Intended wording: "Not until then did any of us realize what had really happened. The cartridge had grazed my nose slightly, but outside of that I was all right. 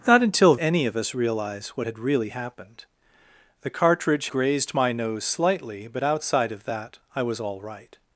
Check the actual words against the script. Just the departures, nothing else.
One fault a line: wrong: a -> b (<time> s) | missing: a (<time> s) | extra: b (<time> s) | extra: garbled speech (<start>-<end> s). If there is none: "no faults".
missing: then did (0.6 s)
missing: had (4.3 s)